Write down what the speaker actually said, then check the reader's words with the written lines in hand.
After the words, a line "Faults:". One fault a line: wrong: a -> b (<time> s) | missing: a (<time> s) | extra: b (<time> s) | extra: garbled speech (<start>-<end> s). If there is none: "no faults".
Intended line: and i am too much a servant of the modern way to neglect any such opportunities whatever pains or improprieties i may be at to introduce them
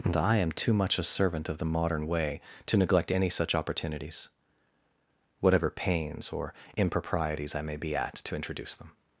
and i am too much a servant of the modern way to neglect any such opportunities whatever pains or improprieties i may be at to introduce them
Faults:
no faults